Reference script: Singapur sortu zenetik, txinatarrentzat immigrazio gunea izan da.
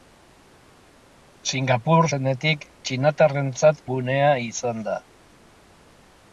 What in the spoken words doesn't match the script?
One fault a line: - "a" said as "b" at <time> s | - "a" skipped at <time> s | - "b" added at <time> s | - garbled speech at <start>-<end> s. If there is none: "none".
- "sortu" skipped at 2.1 s
- "immigrazio" skipped at 3.8 s